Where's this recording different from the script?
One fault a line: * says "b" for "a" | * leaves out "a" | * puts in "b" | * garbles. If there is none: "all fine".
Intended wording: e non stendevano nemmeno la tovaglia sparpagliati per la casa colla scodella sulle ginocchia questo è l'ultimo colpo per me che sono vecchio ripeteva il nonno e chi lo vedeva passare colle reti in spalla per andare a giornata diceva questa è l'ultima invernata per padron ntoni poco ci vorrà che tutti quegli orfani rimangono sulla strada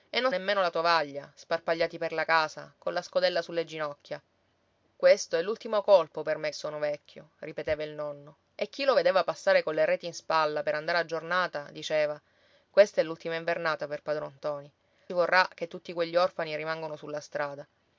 * leaves out "stendevano"
* leaves out "che"
* leaves out "poco ci"